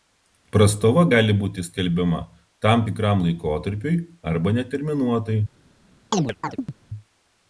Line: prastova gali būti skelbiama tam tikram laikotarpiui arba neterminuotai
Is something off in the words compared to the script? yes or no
no